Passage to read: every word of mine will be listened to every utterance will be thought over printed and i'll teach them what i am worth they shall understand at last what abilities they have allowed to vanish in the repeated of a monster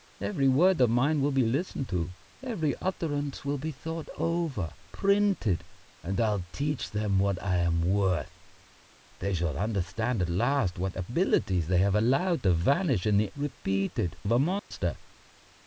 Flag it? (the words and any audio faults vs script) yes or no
yes